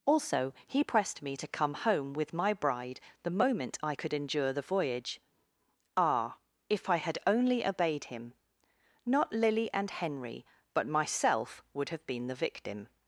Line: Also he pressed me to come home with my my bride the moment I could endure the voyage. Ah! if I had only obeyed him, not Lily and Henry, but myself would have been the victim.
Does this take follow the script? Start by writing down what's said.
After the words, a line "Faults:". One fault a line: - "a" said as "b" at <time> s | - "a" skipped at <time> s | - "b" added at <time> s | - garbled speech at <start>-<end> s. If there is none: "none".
Also he pressed me to come home with my bride the moment I could endure the voyage. Ah! if I had only obeyed him, not Lily and Henry, but myself would have been the victim.
Faults:
- "my" skipped at 2.5 s